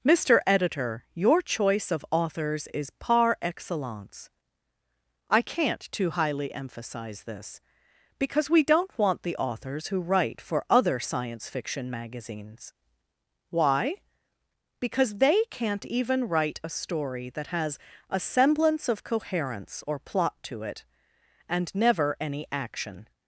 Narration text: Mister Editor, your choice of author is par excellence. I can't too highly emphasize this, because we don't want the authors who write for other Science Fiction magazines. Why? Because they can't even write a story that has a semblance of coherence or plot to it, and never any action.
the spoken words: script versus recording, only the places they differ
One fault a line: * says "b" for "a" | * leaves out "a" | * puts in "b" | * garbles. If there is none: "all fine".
* says "authors" for "author"